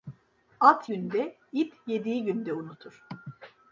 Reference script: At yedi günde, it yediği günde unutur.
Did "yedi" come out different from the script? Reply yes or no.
yes